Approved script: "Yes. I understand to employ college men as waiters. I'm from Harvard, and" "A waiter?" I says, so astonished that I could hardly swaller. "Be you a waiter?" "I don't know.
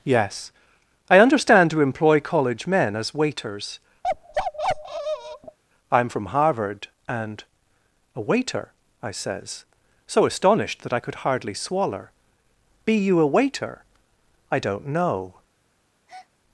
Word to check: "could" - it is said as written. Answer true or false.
true